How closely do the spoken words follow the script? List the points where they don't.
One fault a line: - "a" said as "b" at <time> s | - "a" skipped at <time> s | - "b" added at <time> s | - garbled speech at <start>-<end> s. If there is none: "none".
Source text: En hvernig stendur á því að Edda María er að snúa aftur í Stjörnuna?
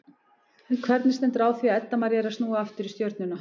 none